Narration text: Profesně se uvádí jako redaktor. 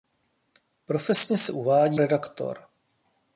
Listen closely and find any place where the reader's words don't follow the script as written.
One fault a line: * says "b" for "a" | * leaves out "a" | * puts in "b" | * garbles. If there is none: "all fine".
* leaves out "jako"